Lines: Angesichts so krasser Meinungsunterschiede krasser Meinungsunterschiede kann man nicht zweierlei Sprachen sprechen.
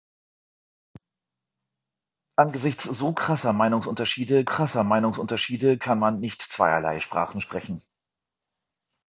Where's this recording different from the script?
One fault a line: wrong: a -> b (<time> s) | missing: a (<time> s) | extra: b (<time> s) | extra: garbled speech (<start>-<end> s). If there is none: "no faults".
no faults